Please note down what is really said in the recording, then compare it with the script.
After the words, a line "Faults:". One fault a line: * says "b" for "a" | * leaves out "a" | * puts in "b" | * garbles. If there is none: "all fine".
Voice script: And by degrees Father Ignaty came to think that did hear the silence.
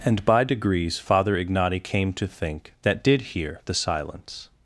And by degrees Father Ignaty came to think that did hear the silence.
Faults:
all fine